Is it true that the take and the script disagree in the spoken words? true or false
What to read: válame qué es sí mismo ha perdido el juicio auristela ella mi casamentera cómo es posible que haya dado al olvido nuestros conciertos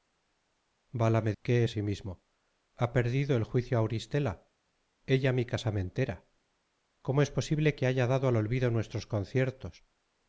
false